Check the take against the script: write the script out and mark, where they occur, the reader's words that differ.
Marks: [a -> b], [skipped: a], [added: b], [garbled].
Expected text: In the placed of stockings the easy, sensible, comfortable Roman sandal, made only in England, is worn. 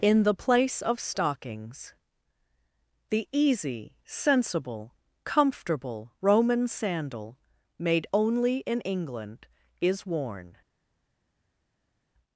In the [placed -> place] of stockings the easy, sensible, comfortable Roman sandal, made only in England, is worn.